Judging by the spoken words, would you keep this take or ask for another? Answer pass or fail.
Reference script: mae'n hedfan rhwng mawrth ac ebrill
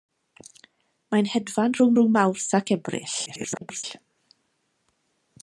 fail